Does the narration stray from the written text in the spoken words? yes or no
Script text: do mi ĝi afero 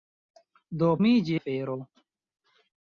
no